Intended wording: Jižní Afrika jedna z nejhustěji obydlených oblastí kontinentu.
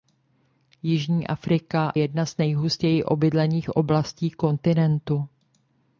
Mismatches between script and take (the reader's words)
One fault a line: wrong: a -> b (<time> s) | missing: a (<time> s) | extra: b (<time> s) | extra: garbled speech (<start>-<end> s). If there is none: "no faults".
no faults